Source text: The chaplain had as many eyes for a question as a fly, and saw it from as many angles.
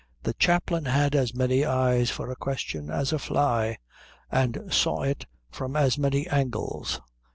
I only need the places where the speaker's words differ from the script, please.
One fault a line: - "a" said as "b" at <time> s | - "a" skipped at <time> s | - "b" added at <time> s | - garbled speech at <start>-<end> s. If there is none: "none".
none